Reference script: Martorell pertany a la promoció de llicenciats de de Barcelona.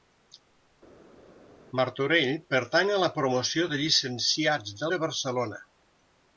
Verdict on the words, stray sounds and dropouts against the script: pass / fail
pass